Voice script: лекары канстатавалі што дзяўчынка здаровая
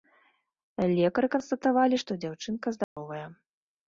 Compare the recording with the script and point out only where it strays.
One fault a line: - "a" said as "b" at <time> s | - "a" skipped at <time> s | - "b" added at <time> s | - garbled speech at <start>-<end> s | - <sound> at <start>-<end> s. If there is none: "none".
- dropout at 2.8-3.0 s